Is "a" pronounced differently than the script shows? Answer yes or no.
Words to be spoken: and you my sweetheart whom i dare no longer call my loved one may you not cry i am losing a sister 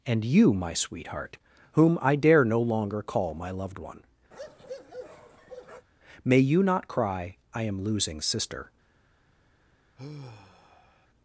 yes